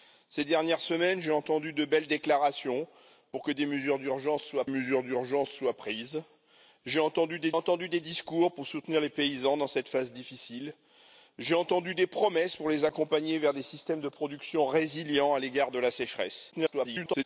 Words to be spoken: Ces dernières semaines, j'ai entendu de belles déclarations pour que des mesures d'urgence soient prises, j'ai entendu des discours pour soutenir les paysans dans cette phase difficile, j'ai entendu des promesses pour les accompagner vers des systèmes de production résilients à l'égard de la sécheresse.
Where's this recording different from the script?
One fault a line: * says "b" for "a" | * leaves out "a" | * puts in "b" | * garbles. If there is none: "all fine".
* puts in "mesures d'urgence soient"
* puts in "entendu des"
* garbles